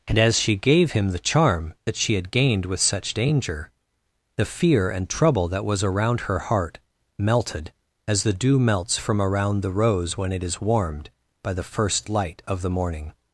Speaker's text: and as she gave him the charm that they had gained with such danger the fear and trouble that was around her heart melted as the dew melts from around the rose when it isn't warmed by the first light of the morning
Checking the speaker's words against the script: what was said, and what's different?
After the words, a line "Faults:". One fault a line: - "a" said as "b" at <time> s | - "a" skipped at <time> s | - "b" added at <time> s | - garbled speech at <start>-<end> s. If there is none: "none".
and as she gave him the charm that she had gained with such danger the fear and trouble that was around her heart melted as the dew melts from around the rose when it is warmed by the first light of the morning
Faults:
- "they" said as "she" at 1.9 s
- "isn't" said as "is" at 10.4 s